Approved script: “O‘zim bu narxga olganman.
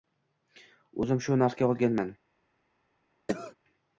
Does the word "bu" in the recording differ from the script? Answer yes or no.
yes